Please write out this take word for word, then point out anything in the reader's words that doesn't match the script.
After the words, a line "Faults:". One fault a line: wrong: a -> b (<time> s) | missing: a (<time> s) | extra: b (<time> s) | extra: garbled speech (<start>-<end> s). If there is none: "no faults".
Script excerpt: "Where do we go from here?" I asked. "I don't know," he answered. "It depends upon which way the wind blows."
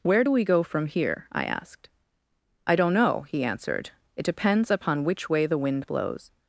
"Where do we go from here?" I asked. "I don't know," he answered. "It depends upon which way the wind blows."
Faults:
no faults